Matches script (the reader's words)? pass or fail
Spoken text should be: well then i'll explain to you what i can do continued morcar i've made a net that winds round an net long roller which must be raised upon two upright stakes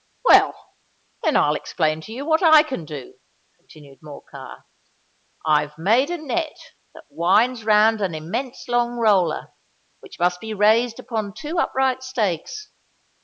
fail